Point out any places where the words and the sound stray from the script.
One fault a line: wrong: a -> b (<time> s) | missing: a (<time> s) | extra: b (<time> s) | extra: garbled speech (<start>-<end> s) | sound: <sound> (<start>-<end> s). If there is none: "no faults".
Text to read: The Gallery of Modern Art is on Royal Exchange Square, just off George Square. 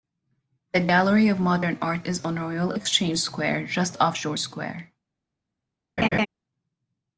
sound: laugh (6.0-6.3 s)